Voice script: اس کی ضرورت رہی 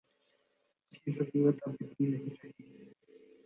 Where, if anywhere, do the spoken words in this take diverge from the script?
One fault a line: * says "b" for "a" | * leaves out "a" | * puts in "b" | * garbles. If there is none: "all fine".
* puts in "اب اتنی نہیں"